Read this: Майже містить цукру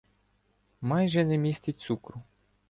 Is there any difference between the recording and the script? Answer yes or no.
yes